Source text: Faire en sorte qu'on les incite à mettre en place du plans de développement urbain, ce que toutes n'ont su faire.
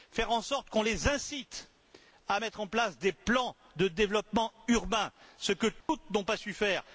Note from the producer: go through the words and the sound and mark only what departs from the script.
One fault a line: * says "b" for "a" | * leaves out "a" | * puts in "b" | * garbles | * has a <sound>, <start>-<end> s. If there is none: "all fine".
* says "des" for "du"
* has a dropout, 5.8-5.9 s
* puts in "pas"